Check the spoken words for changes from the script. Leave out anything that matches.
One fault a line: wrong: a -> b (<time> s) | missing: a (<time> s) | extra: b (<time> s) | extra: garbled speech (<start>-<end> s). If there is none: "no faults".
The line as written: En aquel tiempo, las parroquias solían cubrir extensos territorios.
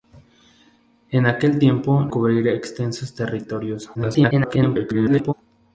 missing: las parroquias solían (2.1 s)
extra: garbled speech (3.9-5.3 s)